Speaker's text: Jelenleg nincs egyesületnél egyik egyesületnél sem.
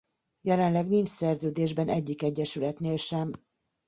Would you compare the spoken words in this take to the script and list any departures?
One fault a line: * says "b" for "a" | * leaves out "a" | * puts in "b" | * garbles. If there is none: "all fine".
* says "szerződésben" for "egyesületnél"